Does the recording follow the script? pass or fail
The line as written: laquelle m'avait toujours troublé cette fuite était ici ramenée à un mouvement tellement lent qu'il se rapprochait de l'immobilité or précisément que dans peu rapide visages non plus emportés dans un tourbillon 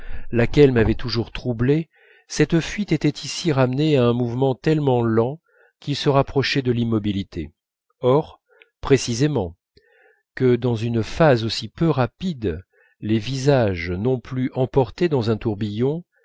fail